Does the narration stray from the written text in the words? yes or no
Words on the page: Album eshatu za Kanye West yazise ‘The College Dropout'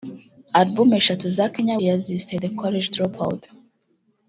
yes